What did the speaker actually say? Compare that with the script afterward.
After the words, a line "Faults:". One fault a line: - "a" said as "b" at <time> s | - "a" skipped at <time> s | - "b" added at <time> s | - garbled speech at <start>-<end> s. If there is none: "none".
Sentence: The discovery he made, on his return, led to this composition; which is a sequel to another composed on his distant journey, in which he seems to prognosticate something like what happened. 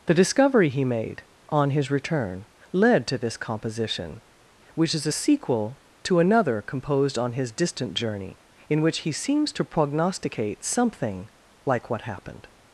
The discovery he made, on his return, led to this composition; which is a sequel to another composed on his distant journey, in which he seems to prognosticate something like what happened.
Faults:
none